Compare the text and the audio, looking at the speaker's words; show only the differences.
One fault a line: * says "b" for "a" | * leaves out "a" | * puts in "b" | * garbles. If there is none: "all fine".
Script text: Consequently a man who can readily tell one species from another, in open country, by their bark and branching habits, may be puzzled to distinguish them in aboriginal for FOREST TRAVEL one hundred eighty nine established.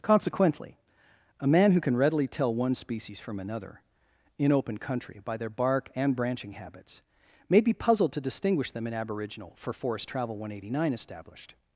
all fine